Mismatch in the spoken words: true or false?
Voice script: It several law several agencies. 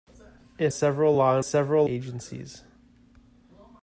false